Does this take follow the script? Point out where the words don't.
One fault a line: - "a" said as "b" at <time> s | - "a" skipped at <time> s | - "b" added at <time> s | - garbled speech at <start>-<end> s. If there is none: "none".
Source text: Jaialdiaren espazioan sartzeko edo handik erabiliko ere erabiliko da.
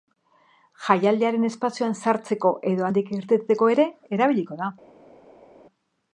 - "erabiliko" said as "irteteko" at 3.2 s